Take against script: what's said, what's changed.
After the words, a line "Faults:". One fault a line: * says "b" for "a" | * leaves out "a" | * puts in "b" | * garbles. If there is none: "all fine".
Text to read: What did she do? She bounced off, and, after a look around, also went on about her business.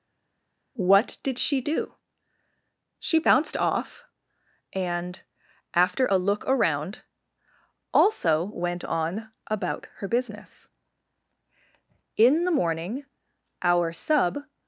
What did she do? She bounced off, and, after a look around, also went on about her business. In the morning our sub
Faults:
* puts in "In the morning our sub"